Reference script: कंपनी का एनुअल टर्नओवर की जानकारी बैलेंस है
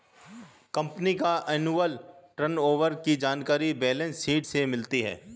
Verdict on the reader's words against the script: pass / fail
fail